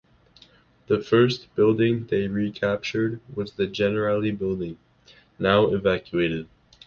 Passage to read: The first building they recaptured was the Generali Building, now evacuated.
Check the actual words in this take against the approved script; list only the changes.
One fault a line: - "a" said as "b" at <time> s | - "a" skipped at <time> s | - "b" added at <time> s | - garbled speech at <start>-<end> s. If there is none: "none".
none